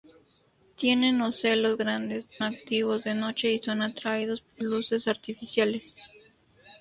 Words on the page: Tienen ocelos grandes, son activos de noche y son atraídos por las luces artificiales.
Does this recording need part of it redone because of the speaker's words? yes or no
yes